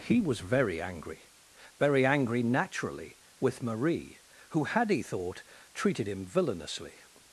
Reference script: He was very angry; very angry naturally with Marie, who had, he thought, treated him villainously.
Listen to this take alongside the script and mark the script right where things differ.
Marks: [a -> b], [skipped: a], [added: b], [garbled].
He was very angry; very angry naturally with Marie, who had, he thought, treated him villainously.